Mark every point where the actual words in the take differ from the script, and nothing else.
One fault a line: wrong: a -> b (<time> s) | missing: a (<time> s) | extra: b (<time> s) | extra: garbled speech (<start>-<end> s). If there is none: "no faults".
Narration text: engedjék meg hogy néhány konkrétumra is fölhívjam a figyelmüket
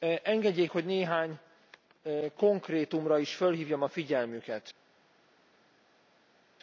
missing: meg (0.7 s)